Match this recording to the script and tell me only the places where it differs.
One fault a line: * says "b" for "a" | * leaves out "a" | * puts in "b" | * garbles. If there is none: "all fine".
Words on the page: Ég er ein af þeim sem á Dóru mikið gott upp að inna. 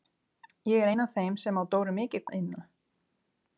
* leaves out "gott upp"